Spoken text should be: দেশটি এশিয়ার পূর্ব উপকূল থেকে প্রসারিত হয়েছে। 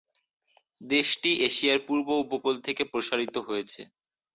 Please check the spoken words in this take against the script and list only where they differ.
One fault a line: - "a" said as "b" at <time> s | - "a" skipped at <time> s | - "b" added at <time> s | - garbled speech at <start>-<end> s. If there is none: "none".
none